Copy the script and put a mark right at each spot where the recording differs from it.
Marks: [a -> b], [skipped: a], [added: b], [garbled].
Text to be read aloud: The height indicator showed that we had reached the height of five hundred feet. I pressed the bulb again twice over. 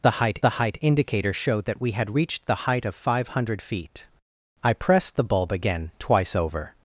The height [added: the height] indicator showed that we had reached the height of five hundred feet. I pressed the bulb again twice over.